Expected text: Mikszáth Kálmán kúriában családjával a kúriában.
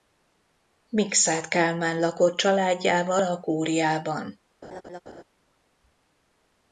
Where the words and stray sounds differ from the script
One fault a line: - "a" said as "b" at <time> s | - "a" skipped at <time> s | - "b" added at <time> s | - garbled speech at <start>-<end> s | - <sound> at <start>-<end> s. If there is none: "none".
- "kúriában" said as "lakott" at 2.0 s
- laugh at 4.6-5.2 s